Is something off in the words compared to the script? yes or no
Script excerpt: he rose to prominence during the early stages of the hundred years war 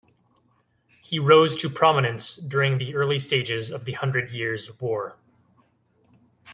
no